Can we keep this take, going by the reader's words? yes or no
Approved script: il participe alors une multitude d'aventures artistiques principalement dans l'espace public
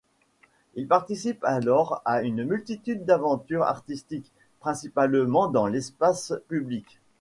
no